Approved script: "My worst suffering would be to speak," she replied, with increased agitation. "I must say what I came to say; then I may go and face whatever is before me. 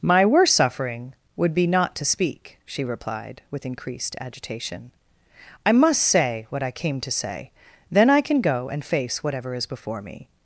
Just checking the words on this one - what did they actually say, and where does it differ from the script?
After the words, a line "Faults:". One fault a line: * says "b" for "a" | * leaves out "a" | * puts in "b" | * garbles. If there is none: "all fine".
"My worst suffering would be not to speak," she replied, with increased agitation. "I must say what I came to say; then I can go and face whatever is before me.
Faults:
* puts in "not"
* says "can" for "may"